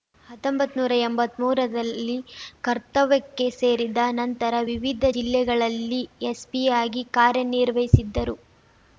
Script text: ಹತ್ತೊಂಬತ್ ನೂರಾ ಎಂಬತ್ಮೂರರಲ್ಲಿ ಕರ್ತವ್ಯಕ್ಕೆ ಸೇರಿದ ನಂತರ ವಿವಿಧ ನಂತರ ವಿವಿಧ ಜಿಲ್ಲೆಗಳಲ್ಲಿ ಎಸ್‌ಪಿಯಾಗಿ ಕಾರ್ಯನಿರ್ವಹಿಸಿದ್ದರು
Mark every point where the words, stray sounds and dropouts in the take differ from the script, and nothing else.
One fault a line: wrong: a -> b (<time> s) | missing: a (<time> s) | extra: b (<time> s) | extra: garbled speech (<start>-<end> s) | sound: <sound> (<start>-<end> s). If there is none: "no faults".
missing: ನಂತರ ವಿವಿಧ (5.0 s)